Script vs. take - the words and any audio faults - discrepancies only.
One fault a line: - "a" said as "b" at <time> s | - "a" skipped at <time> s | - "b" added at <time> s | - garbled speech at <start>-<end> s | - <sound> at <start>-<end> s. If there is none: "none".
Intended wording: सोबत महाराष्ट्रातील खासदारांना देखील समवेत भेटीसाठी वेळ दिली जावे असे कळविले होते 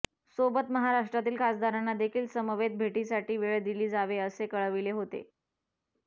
none